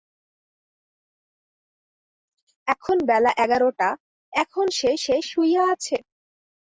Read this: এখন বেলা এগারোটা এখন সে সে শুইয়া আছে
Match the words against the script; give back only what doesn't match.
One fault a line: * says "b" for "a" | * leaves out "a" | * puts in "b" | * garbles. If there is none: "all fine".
all fine